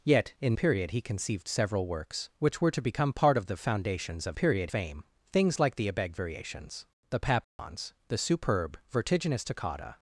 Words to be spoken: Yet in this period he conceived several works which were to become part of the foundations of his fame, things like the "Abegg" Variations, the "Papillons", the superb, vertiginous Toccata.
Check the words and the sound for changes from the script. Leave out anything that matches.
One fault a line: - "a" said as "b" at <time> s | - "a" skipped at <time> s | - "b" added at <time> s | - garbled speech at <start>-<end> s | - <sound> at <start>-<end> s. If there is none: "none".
- "this" skipped at 0.6 s
- "his" said as "period" at 4.3 s
- dropout at 7.4-7.6 s